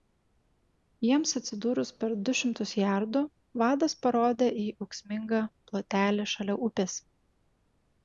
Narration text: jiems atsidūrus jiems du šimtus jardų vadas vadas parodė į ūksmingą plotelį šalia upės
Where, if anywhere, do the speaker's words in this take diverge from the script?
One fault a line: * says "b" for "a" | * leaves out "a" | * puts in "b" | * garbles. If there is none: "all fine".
* says "per" for "jiems"
* leaves out "vadas"